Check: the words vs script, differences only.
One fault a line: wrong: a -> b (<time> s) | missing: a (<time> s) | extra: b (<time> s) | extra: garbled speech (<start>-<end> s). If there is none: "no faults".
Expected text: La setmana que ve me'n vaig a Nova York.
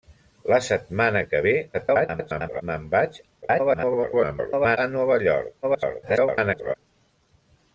extra: garbled speech (1.7-2.6 s)
extra: garbled speech (3.4-4.8 s)
extra: garbled speech (5.6-6.7 s)